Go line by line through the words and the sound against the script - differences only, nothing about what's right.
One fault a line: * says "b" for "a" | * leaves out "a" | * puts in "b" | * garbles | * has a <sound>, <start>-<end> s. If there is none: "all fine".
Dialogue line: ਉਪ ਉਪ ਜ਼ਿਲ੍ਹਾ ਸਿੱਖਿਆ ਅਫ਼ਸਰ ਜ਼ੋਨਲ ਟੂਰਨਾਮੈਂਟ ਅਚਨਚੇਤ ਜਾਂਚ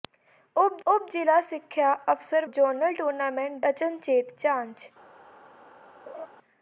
* has a laugh, 6.1-6.3 s